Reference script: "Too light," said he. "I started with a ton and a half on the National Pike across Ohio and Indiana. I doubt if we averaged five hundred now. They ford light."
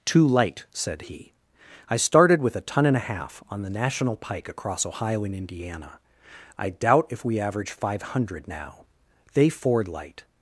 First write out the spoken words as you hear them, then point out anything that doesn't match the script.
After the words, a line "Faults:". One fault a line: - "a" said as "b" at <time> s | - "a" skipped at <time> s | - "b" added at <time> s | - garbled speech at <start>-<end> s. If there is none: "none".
"Too light," said he. "I started with a ton and a half on the National Pike across Ohio and Indiana. I doubt if we average five hundred now. They ford light."
Faults:
- "averaged" said as "average" at 7.4 s